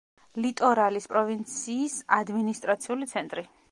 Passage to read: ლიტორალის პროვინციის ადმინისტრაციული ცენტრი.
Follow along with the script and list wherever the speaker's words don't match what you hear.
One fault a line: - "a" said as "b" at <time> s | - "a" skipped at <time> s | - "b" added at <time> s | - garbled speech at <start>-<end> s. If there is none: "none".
none